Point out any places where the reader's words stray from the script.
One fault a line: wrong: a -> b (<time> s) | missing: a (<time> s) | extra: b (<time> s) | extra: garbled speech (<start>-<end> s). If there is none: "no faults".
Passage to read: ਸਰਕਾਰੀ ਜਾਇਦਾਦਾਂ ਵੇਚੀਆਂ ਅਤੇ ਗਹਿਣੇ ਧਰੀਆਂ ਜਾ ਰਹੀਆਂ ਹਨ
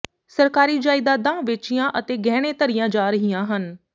no faults